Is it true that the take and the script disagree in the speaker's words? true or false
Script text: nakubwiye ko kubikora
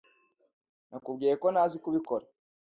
true